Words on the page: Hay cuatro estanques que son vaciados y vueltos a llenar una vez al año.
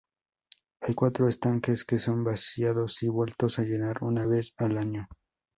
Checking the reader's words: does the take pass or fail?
pass